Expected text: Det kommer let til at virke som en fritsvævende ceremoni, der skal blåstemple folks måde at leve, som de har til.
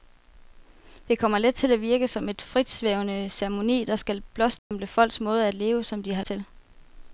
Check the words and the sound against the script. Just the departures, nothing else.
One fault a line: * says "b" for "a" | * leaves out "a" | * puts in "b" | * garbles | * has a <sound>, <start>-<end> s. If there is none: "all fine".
* has a dropout, 4.6-4.7 s